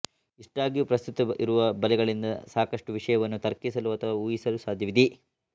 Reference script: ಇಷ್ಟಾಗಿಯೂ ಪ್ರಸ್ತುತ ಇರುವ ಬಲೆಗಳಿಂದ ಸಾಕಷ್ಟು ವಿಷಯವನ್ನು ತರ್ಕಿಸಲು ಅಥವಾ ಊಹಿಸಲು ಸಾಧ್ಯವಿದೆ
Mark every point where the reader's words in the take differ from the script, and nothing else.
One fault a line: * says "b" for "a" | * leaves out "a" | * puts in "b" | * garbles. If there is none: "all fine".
all fine